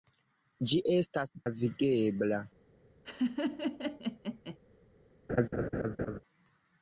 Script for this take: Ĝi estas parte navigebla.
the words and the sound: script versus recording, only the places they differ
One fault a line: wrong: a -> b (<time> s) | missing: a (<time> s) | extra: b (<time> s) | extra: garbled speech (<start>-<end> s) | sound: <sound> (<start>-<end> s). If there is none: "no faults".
missing: parte (1.4 s)
sound: laugh (3.0-4.6 s)
sound: laugh (5.3-6.2 s)